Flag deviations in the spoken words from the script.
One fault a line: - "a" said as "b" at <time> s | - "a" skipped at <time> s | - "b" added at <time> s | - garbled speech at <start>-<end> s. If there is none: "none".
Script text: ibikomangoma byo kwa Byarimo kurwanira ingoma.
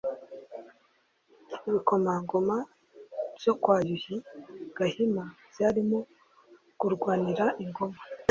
- "Yuhi Gahima" added at 3.9 s